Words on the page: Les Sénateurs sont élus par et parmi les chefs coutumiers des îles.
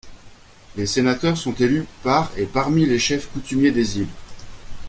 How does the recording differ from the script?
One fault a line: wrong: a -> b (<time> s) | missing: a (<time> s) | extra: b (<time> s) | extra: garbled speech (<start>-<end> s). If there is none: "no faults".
no faults